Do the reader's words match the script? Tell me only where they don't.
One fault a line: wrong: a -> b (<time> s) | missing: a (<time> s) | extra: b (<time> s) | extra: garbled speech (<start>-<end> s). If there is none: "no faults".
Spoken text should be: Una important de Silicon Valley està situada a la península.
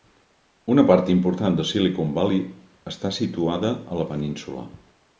extra: part (0.9 s)